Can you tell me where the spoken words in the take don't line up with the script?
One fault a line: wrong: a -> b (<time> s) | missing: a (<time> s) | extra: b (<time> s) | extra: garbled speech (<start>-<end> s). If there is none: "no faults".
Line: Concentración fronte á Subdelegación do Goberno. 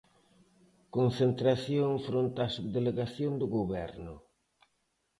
no faults